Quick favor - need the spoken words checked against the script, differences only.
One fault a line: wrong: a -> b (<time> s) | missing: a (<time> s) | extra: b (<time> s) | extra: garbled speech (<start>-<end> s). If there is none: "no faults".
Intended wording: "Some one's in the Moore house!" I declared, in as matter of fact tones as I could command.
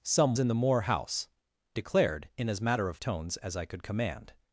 missing: one's (0.3 s)
missing: I (1.3 s)
missing: fact (3.0 s)